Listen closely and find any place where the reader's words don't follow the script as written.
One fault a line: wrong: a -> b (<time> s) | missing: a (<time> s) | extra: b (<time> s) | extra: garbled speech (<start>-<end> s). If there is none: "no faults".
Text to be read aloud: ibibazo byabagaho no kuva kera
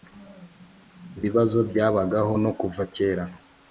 no faults